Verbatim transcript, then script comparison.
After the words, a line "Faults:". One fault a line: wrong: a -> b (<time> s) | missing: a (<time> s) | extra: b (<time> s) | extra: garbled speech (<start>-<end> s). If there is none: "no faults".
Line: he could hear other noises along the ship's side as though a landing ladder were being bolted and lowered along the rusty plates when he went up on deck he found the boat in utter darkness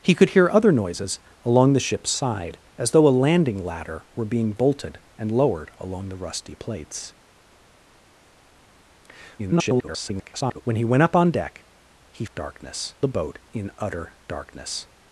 he could hear other noises along the ship's side as though a landing ladder were being bolted and lowered along the rusty plates [garbled] when he went up on deck he darkness the boat in utter darkness
Faults:
extra: garbled speech (9.4-10.6 s)
wrong: found -> darkness (12.3 s)